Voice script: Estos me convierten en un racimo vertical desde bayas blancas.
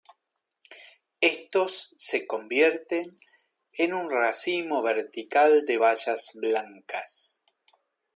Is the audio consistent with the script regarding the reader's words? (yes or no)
no